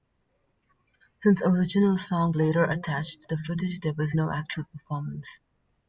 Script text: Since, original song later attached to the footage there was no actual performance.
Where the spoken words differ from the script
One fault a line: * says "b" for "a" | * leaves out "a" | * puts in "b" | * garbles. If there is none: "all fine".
all fine